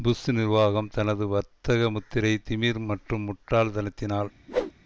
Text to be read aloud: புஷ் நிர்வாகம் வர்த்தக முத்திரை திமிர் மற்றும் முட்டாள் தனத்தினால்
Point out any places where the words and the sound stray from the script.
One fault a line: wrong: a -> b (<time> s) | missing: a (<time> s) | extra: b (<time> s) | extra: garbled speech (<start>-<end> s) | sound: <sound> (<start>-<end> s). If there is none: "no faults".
extra: தனது (0.9 s)
sound: whoosh (4.5-4.7 s)